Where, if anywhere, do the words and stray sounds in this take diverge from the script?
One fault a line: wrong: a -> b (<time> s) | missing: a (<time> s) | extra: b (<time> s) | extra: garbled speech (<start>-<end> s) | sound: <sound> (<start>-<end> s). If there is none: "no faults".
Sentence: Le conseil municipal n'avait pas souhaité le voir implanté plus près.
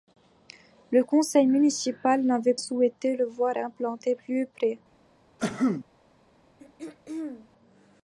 missing: pas (2.5 s)
sound: cough (5.4-5.8 s)
sound: throat clearing (6.6-7.5 s)